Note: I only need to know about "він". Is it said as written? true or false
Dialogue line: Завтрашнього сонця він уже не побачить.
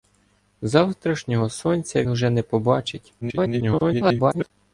false